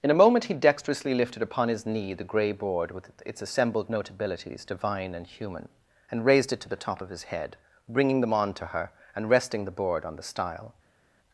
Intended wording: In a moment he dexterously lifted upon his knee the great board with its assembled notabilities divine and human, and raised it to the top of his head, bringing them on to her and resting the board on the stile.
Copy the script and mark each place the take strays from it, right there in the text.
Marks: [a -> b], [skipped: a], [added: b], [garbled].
In a moment he dexterously lifted upon his knee the [great -> grey] board with its assembled notabilities divine and human, and raised it to the top of his head, bringing them on to her and resting the board on the stile.